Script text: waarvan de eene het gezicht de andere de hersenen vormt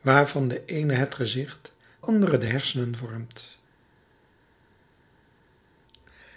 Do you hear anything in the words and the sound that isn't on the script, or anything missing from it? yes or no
yes